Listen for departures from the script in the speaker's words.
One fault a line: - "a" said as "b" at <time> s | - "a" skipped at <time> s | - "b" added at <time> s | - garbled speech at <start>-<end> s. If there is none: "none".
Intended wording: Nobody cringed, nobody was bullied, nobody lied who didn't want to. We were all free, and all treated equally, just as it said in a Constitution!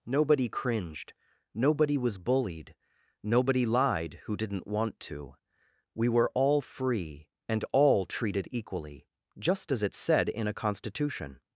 none